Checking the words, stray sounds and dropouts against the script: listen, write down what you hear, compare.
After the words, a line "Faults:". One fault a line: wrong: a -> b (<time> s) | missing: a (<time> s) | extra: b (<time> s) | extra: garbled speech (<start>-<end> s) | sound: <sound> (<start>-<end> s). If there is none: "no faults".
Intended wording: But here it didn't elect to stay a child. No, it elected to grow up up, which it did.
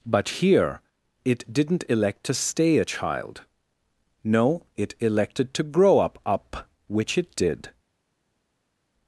But here it didn't elect to stay a child. No, it elected to grow up up, which it did.
Faults:
no faults